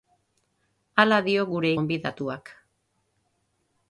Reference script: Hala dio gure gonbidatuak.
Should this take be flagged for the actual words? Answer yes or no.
no